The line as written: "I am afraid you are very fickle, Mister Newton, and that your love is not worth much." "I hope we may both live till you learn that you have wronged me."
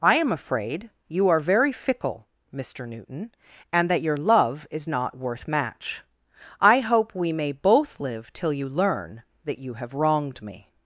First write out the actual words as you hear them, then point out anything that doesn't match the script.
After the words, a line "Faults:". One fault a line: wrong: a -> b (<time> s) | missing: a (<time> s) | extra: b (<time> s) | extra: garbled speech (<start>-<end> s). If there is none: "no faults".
"I am afraid you are very fickle, Mister Newton, and that your love is not worth match." "I hope we may both live till you learn that you have wronged me."
Faults:
wrong: much -> match (5.5 s)